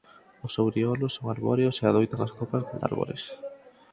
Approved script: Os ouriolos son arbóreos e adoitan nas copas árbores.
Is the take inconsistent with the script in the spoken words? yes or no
no